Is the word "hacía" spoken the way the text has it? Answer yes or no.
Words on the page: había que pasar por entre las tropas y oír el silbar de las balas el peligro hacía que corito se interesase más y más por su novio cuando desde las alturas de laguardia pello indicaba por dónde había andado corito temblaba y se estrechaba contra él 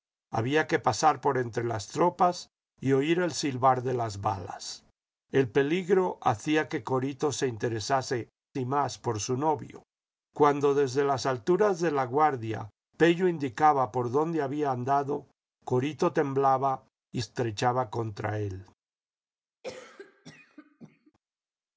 yes